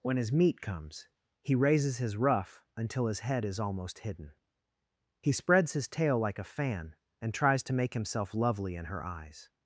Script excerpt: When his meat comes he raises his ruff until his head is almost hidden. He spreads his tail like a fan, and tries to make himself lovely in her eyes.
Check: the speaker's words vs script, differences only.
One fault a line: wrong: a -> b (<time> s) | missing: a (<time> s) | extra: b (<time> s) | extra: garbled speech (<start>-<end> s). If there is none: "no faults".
no faults